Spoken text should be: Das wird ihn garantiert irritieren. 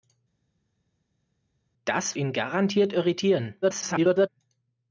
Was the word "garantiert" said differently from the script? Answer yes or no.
no